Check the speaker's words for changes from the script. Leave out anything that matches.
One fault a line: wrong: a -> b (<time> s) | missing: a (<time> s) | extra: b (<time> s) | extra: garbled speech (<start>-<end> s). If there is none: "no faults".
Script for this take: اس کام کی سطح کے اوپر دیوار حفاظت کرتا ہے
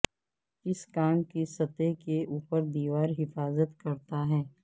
no faults